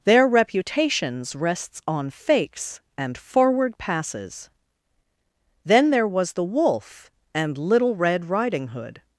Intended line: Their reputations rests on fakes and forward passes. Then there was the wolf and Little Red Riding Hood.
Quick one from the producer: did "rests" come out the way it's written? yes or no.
yes